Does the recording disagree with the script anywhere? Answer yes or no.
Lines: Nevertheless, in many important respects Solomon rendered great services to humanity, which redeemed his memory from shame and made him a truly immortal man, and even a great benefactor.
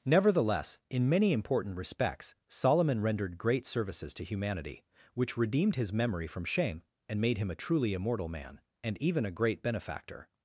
no